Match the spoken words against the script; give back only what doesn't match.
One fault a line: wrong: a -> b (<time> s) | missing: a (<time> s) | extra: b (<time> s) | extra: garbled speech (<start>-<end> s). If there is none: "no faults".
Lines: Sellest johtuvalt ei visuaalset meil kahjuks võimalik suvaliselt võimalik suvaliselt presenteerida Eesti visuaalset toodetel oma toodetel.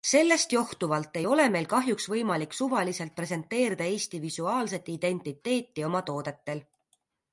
wrong: visuaalset -> ole (1.3 s)
missing: võimalik suvaliselt (3.2 s)
wrong: toodetel -> identiteeti (4.9 s)